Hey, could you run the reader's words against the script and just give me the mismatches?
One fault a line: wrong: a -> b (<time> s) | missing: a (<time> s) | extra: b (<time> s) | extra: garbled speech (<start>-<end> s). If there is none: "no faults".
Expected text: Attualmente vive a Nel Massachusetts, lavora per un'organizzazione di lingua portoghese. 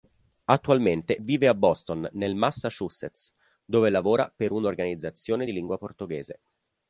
extra: Boston (1.5 s)
extra: dove (3.6 s)